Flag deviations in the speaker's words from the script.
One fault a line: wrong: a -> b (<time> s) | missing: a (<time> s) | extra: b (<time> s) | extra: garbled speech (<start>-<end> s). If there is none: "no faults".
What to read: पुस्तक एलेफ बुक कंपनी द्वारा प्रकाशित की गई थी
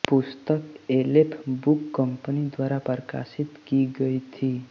no faults